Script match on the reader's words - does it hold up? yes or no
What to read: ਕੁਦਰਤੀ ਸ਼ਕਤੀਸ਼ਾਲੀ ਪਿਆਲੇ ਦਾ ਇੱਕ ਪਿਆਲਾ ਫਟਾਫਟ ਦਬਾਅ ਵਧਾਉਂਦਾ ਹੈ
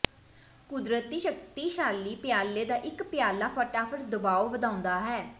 yes